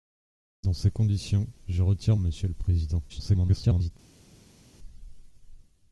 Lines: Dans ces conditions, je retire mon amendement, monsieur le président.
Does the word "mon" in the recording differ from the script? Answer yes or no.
yes